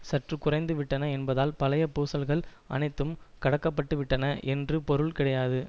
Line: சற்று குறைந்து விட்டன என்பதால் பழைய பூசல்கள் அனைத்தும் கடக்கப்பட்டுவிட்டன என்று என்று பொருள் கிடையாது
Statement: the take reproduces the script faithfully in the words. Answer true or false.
false